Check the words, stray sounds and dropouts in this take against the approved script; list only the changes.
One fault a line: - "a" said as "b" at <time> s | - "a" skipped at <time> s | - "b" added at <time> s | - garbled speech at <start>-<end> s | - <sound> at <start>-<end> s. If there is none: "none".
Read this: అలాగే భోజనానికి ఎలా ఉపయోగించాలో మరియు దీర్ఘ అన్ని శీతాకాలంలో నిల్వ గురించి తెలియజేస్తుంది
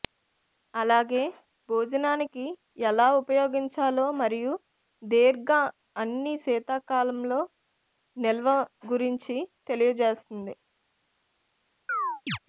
- chirp at 11.9-12.4 s